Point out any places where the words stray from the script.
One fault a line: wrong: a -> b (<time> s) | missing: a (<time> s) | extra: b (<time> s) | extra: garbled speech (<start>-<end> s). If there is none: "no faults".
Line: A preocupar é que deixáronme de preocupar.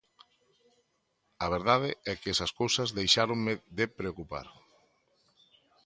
wrong: preocupar -> verdade (1.6 s)
extra: esas cousas (2.3 s)